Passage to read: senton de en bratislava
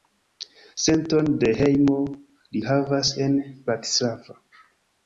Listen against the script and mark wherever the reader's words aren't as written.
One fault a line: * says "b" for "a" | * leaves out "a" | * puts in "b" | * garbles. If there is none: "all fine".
* puts in "hejmo li havas"